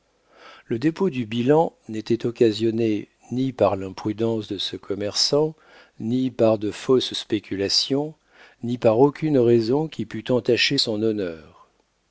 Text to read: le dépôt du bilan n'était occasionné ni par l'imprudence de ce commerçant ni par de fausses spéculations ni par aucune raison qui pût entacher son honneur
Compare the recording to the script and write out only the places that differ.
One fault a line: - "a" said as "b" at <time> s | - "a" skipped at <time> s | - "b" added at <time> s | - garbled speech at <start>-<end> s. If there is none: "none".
none